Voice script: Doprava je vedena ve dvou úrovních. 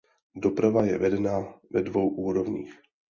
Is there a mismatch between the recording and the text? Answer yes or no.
no